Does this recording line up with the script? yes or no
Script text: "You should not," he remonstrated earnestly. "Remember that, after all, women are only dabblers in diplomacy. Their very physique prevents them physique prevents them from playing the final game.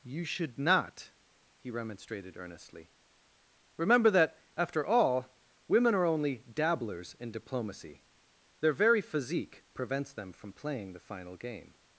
no